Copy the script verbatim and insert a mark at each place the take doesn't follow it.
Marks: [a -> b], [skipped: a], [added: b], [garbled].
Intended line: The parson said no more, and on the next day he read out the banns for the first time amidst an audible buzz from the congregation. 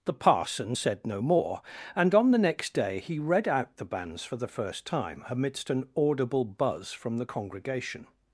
The parson said no more, and on the next day he read out the banns for the first time amidst an audible buzz from the congregation.